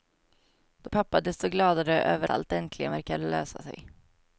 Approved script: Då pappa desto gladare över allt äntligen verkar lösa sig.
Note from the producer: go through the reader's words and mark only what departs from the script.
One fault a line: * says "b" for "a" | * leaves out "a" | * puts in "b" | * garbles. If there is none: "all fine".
all fine